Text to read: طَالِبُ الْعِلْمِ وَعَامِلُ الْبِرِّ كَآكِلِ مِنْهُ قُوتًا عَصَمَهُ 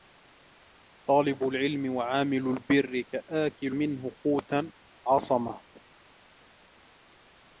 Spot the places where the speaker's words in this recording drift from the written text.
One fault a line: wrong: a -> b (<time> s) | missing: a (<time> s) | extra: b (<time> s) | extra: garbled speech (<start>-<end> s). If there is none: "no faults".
no faults